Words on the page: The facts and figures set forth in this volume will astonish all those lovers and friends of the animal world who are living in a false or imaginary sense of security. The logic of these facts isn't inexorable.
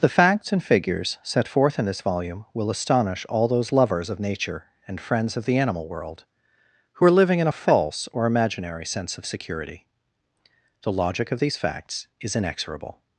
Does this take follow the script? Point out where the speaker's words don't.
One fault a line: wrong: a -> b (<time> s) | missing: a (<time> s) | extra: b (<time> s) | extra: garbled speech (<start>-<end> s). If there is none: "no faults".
extra: of Nature (4.1 s)
wrong: isn't -> is (12.2 s)